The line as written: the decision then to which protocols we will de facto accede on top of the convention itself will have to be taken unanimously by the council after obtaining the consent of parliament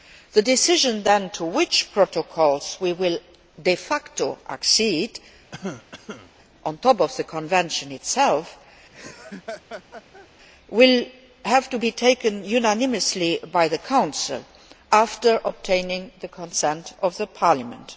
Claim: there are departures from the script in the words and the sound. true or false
true